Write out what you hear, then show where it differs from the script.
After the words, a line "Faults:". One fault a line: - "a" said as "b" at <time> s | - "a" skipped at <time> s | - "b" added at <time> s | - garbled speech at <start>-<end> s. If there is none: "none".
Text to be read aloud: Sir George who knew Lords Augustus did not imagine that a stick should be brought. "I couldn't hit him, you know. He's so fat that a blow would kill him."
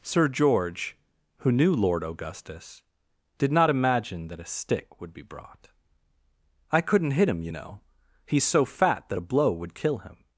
Sir George who knew Lord Augustus did not imagine that a stick would be brought. "I couldn't hit him, you know. He's so fat that a blow would kill him."
Faults:
- "Lords" said as "Lord" at 1.7 s
- "should" said as "would" at 5.0 s